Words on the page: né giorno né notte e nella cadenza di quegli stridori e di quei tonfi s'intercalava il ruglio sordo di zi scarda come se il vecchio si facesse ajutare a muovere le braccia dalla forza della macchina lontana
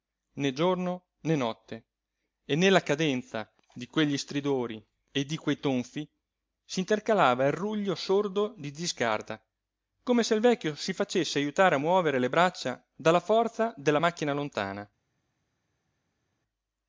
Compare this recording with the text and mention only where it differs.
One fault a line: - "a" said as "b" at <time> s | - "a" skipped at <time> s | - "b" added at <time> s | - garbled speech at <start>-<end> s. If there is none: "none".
none